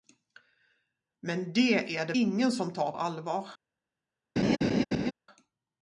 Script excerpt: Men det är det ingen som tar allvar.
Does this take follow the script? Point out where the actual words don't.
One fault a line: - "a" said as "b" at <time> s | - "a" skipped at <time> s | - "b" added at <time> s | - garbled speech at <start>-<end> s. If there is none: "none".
none